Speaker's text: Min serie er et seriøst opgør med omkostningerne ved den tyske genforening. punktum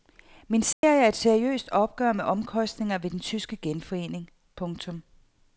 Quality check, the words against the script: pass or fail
pass